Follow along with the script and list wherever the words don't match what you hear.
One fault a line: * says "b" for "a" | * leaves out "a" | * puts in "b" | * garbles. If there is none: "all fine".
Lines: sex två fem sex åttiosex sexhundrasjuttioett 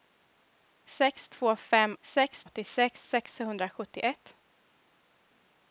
all fine